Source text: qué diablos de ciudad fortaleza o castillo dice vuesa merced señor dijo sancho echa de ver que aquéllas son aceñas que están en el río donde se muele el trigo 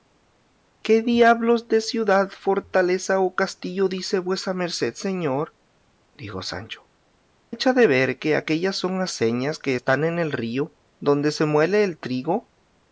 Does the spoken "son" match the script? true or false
true